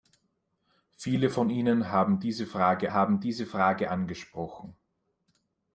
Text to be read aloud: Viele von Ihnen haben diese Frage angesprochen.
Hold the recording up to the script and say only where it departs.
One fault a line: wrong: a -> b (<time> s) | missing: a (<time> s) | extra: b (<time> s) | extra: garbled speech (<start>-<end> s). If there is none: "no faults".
extra: haben diese Frage (2.9 s)